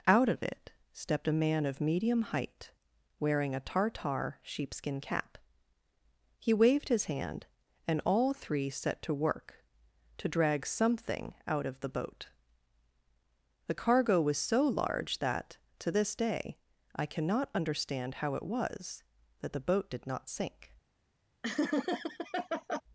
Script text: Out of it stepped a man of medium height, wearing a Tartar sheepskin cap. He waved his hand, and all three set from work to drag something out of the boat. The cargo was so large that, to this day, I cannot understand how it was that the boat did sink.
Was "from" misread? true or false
true